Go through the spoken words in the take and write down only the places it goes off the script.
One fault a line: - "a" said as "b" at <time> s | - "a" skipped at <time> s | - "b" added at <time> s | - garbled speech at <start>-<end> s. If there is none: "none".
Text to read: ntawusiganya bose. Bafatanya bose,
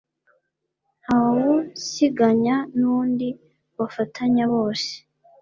- "bose" said as "nundi" at 2.8 s